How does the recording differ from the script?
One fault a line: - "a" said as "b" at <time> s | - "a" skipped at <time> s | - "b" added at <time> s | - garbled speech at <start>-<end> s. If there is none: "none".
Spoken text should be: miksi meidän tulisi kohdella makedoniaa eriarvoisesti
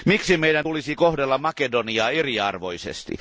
none